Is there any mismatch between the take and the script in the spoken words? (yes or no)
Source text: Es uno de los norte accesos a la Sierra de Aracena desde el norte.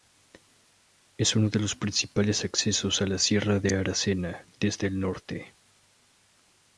yes